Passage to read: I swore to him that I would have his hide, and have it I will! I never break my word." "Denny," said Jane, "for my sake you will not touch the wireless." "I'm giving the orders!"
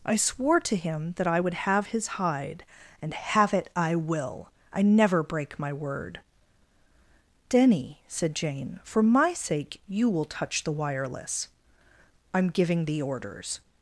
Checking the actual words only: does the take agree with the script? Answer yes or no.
no